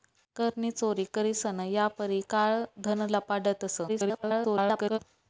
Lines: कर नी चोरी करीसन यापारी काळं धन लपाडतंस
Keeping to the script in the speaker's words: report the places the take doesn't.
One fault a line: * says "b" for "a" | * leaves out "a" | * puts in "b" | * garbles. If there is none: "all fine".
* garbles